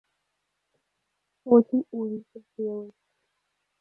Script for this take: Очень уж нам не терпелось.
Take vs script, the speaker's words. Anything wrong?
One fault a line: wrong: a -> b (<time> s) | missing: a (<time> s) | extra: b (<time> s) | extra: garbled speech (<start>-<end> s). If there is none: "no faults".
missing: нам (2.1 s)